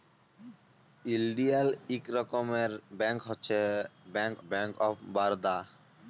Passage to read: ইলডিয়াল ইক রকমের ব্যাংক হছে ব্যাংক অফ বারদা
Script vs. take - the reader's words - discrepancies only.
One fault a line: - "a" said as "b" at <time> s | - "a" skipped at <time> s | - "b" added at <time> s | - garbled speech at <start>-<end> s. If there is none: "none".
- "ব্যাংক" added at 4.5 s